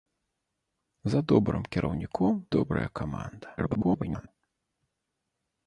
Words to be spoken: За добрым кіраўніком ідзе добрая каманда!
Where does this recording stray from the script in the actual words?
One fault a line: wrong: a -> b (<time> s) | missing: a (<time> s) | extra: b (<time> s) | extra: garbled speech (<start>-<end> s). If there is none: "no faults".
missing: ідзе (2.4 s)
extra: garbled speech (3.6-4.3 s)